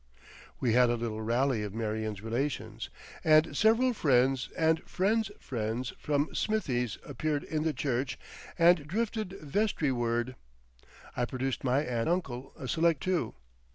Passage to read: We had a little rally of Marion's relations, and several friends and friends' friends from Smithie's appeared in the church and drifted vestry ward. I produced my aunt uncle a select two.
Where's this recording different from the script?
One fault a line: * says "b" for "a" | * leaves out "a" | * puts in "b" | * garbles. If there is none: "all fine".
all fine